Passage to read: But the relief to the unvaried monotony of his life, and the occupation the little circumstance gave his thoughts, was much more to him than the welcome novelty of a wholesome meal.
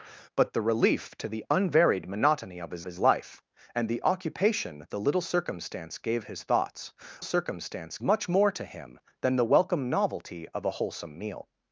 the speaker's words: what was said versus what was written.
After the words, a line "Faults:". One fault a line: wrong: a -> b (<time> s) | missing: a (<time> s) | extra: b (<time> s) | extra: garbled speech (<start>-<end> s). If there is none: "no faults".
But the relief to the unvaried monotony of his his life, and the occupation the little circumstance gave his thoughts, circumstance much more to him than the welcome novelty of a wholesome meal.
Faults:
extra: his (2.8 s)
wrong: was -> circumstance (7.2 s)